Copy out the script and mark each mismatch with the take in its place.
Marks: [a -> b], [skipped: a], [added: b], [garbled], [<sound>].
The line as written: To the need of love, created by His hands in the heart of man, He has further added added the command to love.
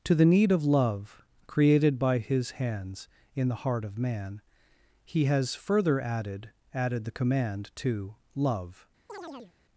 To the need of love, created by His hands in the heart of man, He has further added added the command to love. [chirp]